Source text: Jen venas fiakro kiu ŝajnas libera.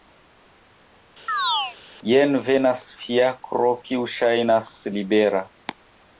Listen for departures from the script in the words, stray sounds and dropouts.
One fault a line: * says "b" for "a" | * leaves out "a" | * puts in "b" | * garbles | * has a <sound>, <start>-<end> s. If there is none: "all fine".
* has a chirp, 1.3-1.8 s